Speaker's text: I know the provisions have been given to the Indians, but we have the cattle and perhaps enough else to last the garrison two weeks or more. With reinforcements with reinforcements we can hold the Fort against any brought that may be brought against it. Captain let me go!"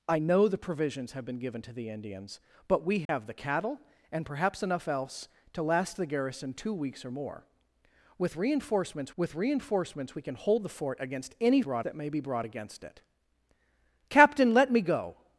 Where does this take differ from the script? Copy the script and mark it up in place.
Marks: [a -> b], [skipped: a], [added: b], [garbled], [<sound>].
I know the provisions have been given to the Indians, but we have [dropout] the cattle and perhaps enough else to last the garrison two weeks or more. With reinforcements with reinforcements we can hold the Fort against any brought that may be brought against it. Captain let me go!"